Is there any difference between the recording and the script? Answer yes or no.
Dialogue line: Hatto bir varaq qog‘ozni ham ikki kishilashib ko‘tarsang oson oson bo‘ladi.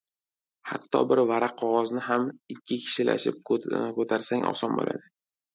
yes